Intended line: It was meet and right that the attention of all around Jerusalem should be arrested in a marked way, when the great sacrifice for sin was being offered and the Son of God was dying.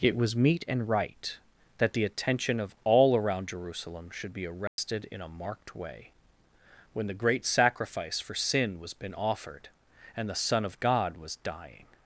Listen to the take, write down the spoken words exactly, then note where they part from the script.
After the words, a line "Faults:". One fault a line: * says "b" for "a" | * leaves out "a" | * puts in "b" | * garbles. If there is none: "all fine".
It was meet and right that the attention of all around Jerusalem should be arrested in a marked way, when the great sacrifice for sin was been offered and the Son of God was dying.
Faults:
* says "been" for "being"